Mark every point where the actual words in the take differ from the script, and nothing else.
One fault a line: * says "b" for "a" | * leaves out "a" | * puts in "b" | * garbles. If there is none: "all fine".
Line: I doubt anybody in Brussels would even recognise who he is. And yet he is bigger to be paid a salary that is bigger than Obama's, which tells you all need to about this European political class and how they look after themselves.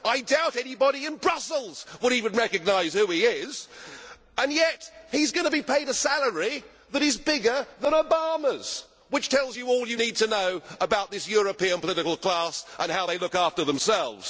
* says "going" for "bigger"
* puts in "you"
* puts in "know"